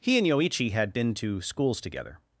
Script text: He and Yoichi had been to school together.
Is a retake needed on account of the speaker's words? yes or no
yes